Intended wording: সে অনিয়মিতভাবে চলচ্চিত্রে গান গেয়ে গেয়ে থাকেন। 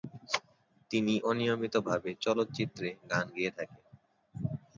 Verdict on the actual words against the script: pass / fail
fail